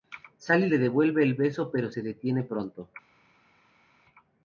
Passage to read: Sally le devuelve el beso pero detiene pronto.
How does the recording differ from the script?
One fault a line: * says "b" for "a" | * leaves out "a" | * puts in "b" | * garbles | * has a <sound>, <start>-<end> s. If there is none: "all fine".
* puts in "se"